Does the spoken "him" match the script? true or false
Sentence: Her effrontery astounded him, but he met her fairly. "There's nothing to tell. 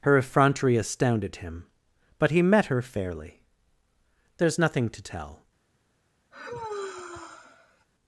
true